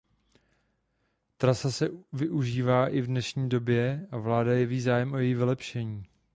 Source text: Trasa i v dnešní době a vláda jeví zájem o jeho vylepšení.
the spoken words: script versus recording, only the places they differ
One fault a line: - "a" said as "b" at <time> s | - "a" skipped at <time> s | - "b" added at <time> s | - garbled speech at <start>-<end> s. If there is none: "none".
- "se využívá" added at 1.7 s
- "jeho" said as "její" at 5.2 s